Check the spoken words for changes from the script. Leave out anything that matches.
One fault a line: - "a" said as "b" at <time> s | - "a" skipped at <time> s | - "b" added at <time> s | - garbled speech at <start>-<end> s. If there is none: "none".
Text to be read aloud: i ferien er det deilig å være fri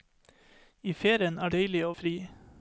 - "det" skipped at 1.5 s
- "være" skipped at 1.9 s